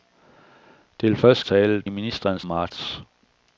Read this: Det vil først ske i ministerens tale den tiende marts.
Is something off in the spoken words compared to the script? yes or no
yes